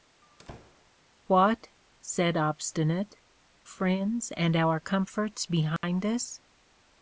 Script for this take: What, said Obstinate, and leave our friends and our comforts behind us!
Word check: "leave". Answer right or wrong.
wrong